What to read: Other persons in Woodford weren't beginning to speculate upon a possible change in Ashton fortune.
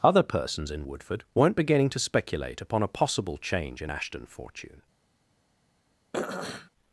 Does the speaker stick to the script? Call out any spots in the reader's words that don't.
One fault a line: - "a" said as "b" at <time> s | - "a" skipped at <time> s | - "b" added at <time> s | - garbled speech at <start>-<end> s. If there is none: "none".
none